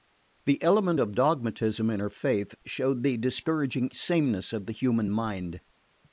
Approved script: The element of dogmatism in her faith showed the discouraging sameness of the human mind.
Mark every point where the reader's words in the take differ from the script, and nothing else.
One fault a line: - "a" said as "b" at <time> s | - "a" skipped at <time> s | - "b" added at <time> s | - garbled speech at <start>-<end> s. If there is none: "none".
none